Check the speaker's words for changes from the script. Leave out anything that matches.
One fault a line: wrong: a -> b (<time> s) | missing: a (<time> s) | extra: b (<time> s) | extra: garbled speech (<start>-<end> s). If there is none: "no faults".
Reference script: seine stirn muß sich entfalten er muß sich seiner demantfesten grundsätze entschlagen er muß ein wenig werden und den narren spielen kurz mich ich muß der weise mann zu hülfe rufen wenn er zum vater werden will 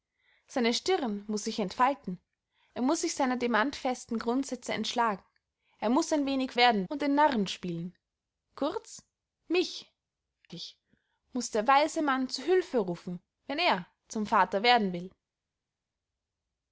no faults